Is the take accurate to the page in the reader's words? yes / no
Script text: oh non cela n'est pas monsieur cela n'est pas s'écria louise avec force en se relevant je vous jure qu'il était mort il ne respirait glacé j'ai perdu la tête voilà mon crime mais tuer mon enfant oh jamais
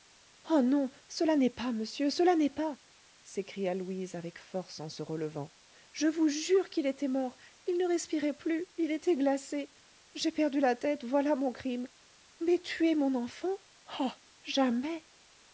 no